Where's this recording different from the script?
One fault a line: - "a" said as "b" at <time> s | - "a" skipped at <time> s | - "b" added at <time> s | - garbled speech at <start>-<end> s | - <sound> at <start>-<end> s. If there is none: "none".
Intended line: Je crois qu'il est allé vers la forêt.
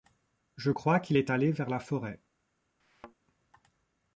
- thud at 2.8-3.1 s